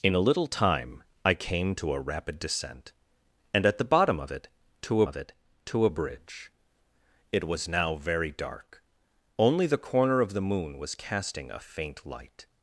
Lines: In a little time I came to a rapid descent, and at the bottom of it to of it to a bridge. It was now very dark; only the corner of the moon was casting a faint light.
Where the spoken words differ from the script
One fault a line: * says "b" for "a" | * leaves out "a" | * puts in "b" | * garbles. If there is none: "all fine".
all fine